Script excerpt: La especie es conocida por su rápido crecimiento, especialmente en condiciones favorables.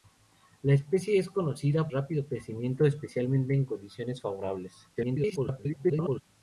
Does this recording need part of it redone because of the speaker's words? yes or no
yes